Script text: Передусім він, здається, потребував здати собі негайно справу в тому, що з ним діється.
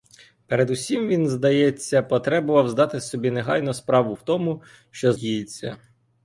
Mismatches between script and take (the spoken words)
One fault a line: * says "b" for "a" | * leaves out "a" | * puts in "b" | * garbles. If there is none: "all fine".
* leaves out "ним"